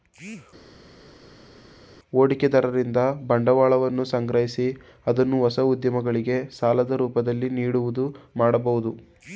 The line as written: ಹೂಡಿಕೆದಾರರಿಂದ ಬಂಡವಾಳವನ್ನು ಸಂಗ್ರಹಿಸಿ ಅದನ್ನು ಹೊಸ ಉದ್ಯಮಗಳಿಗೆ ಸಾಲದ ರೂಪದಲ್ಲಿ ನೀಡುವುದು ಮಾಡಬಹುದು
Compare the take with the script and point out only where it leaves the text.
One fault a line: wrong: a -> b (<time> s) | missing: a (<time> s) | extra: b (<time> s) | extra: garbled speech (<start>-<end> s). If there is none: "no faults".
no faults